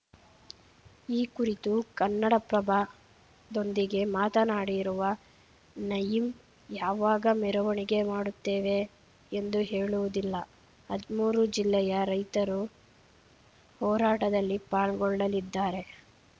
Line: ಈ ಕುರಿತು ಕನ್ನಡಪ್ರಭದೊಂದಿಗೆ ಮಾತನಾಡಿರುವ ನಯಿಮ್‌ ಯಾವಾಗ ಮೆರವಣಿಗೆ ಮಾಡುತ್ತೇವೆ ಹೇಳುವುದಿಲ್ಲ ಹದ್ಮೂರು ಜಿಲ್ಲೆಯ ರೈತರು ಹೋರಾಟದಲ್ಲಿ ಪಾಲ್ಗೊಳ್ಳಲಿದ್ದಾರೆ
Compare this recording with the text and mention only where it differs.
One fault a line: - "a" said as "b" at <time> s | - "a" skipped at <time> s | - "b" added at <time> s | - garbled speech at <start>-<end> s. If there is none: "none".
- "ಎಂದು" added at 9.3 s